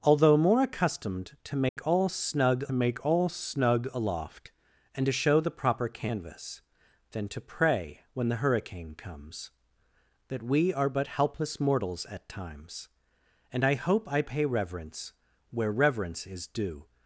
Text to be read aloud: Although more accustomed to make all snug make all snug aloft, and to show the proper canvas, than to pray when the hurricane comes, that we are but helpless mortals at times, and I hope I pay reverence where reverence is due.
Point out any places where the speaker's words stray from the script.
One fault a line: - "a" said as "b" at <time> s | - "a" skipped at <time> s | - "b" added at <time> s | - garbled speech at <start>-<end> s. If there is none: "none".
none